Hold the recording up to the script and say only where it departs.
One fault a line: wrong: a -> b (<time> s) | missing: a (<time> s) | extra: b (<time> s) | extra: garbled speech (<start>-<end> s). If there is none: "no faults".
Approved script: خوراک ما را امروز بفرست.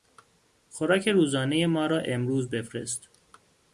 extra: روزانهی (1.1 s)